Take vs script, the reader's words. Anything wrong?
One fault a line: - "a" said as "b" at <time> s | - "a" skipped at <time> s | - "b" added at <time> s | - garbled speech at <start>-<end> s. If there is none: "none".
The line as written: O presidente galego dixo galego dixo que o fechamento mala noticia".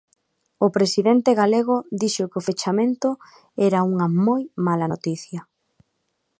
- "galego dixo" skipped at 2.3 s
- "era unha moi" added at 3.7 s